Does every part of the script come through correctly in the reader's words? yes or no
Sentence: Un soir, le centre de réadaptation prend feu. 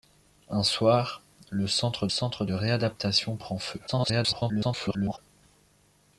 no